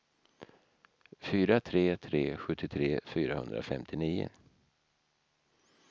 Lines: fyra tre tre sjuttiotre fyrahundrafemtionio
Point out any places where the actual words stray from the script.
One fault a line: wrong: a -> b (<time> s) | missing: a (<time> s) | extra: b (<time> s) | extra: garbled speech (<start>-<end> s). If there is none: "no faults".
no faults